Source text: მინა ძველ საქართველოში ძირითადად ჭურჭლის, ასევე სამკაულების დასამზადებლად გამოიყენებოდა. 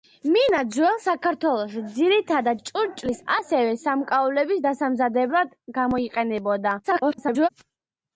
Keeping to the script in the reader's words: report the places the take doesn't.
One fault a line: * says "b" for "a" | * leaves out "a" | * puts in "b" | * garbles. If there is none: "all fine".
* garbles